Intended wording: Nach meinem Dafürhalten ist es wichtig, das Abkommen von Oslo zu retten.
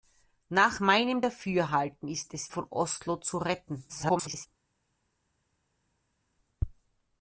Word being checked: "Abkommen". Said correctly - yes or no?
no